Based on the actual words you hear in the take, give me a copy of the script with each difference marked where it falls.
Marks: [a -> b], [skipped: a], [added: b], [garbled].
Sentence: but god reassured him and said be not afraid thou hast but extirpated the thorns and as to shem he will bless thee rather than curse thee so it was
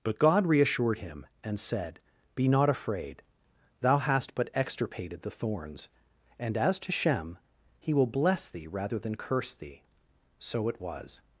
but god reassured him and said be not afraid thou hast but extirpated the thorns and as to shem he will bless thee rather than curse thee so it was